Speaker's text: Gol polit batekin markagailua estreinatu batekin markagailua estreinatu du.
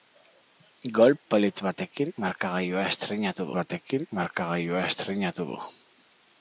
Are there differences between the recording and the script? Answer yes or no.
no